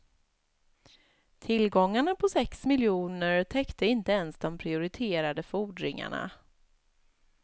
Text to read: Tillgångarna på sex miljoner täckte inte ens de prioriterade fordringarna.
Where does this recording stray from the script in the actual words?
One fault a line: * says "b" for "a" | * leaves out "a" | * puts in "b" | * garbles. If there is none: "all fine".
all fine